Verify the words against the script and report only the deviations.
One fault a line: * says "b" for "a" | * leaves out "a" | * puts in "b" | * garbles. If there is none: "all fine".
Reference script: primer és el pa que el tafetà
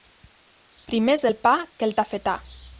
all fine